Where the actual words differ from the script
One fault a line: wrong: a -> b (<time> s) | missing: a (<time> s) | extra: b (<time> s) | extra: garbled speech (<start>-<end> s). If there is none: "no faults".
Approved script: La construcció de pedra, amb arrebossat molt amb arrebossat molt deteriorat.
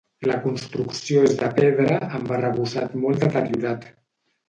extra: és (1.3 s)
missing: amb arrebossat molt (3.3 s)